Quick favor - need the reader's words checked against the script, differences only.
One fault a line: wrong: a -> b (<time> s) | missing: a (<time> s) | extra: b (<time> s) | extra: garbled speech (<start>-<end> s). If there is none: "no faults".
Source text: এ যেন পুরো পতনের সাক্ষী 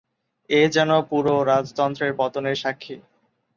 extra: রাজতন্ত্রের (1.4 s)